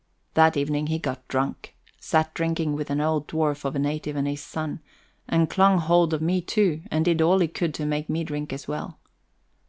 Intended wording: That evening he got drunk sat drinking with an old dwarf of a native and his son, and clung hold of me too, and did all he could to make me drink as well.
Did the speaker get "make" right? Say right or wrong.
right